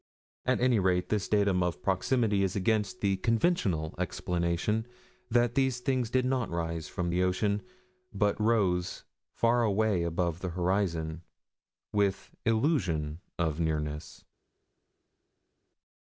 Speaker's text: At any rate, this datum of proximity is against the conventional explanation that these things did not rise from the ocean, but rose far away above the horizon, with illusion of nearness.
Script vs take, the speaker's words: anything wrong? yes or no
no